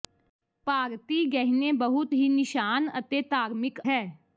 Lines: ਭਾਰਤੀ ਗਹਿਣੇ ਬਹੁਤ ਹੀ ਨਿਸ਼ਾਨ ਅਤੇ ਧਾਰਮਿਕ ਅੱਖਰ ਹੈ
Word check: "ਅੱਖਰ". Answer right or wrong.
wrong